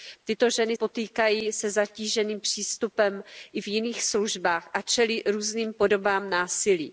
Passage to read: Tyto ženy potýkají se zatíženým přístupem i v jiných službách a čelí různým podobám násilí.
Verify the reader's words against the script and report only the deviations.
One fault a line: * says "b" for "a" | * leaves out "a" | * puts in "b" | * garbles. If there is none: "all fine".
all fine